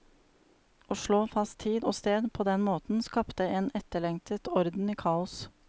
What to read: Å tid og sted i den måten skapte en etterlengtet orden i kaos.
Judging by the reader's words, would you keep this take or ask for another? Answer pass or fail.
fail